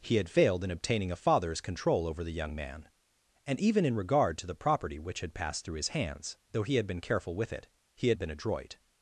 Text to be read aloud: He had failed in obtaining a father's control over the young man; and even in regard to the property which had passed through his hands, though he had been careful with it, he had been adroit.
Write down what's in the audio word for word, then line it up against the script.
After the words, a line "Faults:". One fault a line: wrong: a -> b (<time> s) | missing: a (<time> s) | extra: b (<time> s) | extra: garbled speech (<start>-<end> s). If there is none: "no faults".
He had failed in obtaining a father's control over the young man; and even in regard to the property which had passed through his hands, though he had been careful with it, he had been adroit.
Faults:
no faults